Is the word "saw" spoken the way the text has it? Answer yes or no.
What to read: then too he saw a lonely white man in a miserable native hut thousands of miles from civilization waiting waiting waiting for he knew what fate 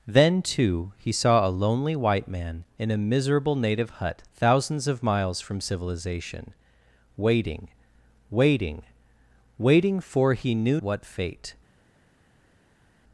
yes